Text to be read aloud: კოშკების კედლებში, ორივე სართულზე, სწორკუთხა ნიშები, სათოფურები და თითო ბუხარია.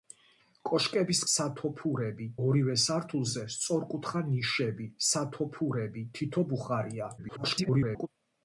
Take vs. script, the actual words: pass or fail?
fail